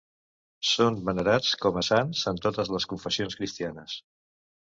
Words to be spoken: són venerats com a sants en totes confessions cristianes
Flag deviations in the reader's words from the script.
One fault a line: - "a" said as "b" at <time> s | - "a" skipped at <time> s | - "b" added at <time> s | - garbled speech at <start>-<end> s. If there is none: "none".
- "les" added at 2.8 s